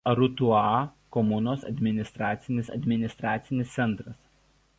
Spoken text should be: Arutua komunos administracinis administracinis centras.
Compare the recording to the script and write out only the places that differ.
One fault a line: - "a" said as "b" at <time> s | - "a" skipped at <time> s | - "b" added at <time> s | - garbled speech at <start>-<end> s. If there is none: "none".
none